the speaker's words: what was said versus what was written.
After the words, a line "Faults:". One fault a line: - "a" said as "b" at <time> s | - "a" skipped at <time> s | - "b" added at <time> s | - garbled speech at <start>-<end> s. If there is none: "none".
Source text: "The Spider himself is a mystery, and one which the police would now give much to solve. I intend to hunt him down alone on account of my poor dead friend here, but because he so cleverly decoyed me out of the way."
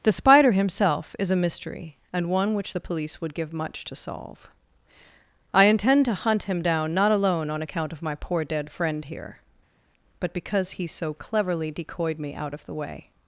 "The Spider himself is a mystery, and one which the police would give much to solve. I intend to hunt him down not alone on account of my poor dead friend here, but because he so cleverly decoyed me out of the way."
Faults:
- "now" skipped at 3.3 s
- "not" added at 6.9 s